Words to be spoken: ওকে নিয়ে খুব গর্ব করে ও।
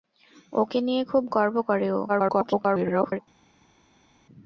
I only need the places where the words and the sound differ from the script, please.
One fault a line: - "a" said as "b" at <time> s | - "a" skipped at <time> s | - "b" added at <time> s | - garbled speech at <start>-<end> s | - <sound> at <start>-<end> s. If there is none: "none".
- garbled speech at 2.1-3.2 s